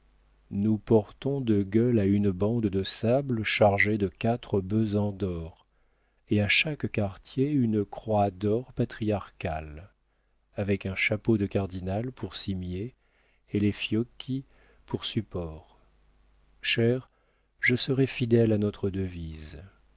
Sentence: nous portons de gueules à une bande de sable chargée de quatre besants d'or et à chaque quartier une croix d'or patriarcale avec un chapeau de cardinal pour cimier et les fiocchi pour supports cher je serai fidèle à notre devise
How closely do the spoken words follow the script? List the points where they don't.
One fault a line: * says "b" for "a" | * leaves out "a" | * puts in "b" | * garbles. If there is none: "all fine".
all fine